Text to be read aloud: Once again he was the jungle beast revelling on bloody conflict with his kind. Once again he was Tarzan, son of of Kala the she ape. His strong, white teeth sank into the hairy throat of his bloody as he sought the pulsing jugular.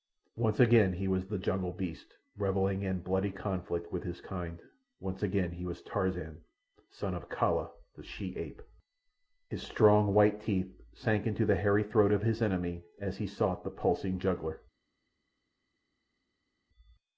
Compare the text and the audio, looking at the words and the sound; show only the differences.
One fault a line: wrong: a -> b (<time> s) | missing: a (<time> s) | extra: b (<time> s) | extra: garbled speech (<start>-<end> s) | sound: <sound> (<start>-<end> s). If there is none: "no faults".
wrong: on -> in (2.8 s)
missing: of (7.3 s)
wrong: bloody -> enemy (12.4 s)